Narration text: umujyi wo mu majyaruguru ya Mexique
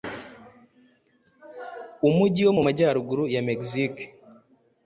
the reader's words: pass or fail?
pass